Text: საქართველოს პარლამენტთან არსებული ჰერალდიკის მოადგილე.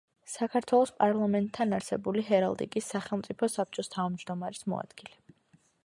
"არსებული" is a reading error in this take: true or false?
false